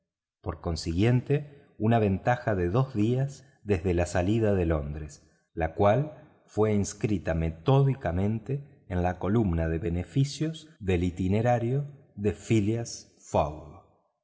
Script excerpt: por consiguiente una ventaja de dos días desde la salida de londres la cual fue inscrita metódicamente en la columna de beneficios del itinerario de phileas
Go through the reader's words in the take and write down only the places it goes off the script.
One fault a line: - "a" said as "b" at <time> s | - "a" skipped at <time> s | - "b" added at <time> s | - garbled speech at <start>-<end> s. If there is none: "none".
none